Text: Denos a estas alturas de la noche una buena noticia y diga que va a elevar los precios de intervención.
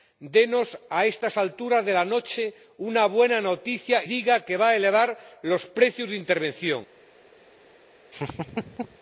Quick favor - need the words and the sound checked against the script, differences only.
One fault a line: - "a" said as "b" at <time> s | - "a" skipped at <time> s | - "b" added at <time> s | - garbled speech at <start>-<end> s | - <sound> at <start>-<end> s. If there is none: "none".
- "y" skipped at 4.0 s
- laugh at 8.1-9.0 s